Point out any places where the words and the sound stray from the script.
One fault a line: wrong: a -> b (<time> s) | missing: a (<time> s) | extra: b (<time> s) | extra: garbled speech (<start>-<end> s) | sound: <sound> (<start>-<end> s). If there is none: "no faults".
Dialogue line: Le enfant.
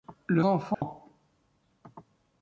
sound: dropout (0.7-0.8 s)